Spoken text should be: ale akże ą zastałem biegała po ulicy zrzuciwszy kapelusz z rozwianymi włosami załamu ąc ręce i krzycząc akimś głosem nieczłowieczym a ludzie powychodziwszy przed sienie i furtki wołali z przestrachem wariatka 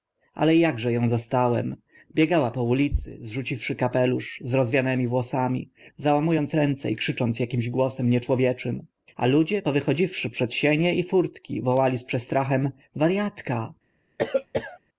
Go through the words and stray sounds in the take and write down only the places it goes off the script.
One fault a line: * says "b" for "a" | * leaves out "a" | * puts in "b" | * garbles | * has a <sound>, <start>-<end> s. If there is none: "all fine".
* has a cough, 14.2-14.8 s